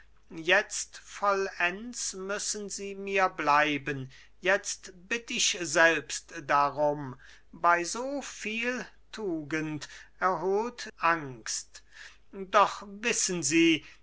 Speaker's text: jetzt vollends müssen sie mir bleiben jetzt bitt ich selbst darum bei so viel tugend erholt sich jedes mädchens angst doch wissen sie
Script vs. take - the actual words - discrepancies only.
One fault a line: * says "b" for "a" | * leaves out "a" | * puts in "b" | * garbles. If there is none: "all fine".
* leaves out "sich jedes mädchens"